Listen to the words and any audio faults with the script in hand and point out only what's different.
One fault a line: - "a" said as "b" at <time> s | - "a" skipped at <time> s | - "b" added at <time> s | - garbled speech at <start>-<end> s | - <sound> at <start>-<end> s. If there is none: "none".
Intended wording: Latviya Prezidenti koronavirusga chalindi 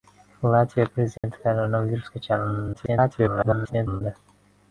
- dropout at 1.2-1.2 s
- garbled speech at 2.7-4.0 s